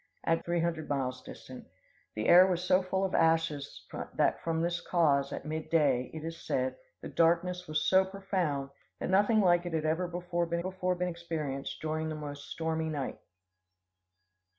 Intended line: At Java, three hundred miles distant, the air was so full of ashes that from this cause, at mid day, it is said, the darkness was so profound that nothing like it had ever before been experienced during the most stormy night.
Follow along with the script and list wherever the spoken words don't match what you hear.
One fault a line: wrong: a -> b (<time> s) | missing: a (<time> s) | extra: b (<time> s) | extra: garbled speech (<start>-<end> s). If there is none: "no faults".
missing: Java (0.4 s)
extra: before been (10.6 s)